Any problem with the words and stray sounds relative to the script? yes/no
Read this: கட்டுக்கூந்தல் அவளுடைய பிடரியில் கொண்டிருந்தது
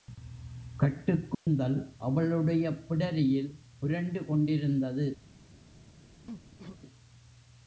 yes